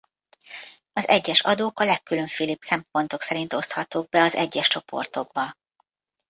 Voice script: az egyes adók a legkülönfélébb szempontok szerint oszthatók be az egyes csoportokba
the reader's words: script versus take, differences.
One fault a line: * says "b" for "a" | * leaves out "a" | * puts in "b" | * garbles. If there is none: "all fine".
all fine